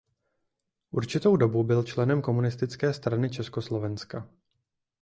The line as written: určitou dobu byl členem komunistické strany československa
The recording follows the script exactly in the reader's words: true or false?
true